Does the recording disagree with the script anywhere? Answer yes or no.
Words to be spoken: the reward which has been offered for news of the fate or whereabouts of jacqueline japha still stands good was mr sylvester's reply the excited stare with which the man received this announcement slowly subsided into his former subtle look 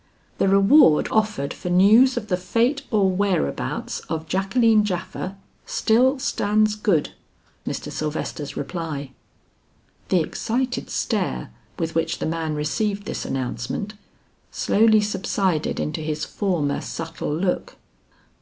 yes